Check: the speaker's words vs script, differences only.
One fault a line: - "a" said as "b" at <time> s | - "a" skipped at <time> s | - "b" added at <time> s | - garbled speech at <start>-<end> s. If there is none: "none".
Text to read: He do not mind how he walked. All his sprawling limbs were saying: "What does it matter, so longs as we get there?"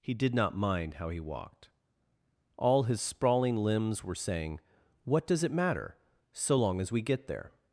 - "do" said as "did" at 0.1 s
- "longs" said as "long" at 6.5 s